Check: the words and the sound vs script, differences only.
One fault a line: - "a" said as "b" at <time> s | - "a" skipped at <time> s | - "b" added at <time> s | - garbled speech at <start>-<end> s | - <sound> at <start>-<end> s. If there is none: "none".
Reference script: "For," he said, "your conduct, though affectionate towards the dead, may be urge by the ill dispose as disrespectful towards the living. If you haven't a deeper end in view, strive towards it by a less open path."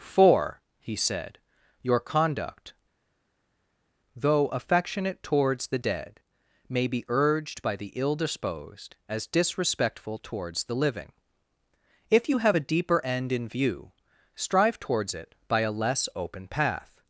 - "urge" said as "urged" at 7.1 s
- "dispose" said as "disposed" at 8.1 s
- "haven't" said as "have" at 12.4 s